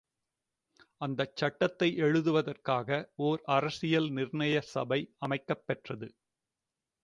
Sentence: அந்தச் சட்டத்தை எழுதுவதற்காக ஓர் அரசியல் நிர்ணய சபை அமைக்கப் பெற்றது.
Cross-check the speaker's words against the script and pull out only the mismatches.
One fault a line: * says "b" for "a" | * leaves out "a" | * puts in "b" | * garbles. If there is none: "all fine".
all fine